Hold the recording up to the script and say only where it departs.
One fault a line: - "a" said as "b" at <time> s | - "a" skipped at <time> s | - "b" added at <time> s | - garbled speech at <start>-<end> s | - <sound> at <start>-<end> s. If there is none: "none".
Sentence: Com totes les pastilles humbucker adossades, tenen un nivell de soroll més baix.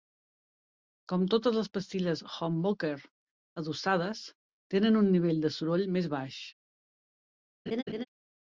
- laugh at 7.7-8.1 s